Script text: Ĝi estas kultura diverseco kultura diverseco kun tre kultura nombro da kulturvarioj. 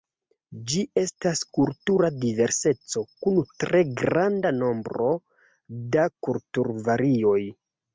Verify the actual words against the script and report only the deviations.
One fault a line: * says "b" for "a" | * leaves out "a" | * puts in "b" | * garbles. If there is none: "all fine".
* leaves out "kultura diverseco"
* says "granda" for "kultura"